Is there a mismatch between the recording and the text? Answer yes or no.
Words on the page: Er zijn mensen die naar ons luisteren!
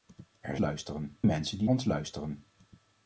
yes